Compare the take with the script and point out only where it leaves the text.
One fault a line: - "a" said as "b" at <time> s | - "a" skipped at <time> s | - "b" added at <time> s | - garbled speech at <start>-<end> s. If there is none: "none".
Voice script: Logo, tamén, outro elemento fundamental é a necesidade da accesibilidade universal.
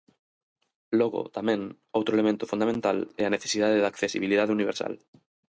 none